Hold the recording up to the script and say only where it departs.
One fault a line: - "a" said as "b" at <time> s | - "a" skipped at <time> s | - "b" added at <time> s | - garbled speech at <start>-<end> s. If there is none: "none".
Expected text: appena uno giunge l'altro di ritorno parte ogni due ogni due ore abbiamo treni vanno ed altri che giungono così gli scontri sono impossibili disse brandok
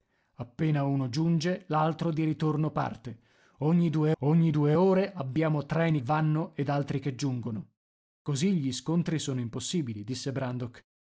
none